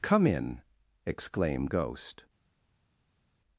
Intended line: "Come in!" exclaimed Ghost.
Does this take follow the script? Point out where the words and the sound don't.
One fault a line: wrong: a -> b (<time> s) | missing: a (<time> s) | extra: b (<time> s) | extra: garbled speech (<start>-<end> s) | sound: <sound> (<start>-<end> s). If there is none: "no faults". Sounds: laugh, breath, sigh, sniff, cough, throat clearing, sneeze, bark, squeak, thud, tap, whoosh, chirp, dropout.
no faults